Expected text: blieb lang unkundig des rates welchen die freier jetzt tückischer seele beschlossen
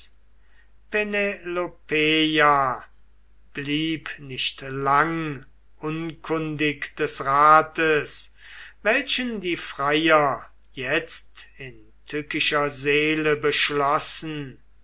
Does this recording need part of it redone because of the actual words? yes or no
yes